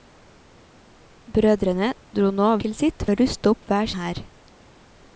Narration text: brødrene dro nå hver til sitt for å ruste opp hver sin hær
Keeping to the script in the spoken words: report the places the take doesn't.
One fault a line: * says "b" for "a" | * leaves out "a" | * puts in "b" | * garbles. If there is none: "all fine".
* leaves out "hver"
* leaves out "for"
* leaves out "sin"